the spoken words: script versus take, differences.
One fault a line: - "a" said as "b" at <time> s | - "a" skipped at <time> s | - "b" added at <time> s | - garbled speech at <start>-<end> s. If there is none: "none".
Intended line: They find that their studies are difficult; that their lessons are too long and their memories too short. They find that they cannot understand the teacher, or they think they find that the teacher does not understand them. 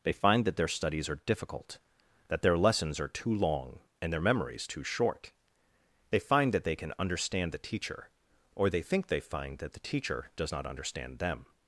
- "cannot" said as "can" at 6.8 s